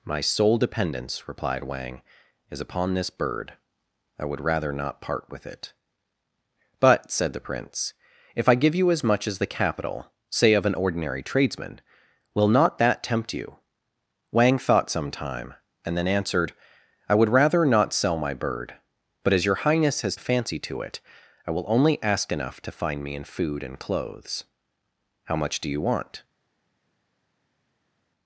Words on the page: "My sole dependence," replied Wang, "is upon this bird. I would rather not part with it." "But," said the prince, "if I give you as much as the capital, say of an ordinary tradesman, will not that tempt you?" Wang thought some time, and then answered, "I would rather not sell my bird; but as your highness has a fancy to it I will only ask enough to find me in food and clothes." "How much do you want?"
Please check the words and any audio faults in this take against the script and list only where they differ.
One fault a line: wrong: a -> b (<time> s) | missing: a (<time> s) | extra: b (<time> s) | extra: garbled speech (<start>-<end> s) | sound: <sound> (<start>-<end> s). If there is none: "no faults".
no faults